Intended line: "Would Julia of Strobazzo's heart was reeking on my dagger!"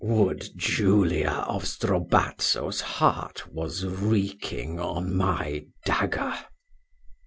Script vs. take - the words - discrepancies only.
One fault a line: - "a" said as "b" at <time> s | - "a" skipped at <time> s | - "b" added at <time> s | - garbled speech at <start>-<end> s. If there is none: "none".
none